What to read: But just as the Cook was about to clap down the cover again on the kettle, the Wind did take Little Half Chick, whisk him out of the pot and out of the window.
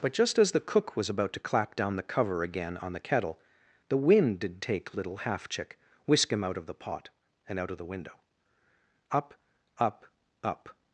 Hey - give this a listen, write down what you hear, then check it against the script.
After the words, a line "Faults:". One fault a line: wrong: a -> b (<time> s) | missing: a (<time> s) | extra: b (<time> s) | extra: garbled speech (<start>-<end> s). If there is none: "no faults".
But just as the Cook was about to clap down the cover again on the kettle, the Wind did take Little Half Chick, whisk him out of the pot and out of the window. Up, up, up
Faults:
extra: Up up up (9.1 s)